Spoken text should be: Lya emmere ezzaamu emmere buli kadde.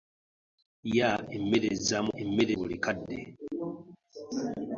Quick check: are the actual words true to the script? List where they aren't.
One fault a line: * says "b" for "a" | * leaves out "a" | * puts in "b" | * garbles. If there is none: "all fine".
all fine